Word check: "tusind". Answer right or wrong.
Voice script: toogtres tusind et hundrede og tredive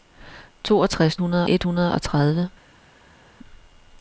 wrong